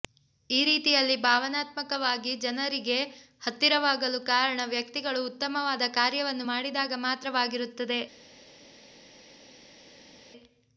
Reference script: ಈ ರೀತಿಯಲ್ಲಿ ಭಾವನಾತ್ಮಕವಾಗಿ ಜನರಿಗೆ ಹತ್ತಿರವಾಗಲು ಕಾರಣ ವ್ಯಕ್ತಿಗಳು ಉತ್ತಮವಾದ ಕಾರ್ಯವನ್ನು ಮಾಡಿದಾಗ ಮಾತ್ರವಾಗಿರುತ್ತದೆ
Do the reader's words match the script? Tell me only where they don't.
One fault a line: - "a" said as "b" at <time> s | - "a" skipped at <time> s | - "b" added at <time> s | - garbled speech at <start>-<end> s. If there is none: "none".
none